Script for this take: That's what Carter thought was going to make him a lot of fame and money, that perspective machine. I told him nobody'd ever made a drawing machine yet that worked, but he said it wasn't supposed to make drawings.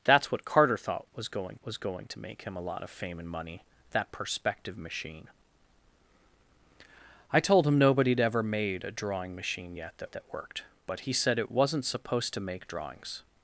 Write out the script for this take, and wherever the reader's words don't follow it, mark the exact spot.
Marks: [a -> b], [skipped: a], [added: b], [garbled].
That's what Carter thought was going [added: was going] to make him a lot of fame and money, that perspective machine. I told him nobody'd ever made a drawing machine yet that [added: that] worked, but he said it wasn't supposed to make drawings.